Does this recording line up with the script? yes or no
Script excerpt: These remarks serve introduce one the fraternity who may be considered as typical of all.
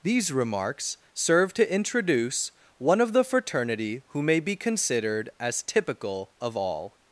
no